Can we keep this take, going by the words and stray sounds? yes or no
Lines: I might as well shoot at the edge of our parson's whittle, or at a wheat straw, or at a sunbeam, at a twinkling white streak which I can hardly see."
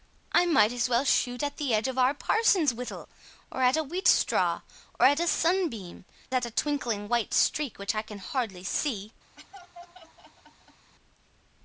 no